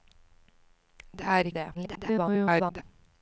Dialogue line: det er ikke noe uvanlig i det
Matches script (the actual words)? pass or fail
fail